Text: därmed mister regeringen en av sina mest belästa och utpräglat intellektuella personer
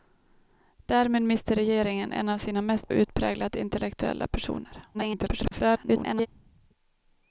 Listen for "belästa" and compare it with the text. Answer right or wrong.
wrong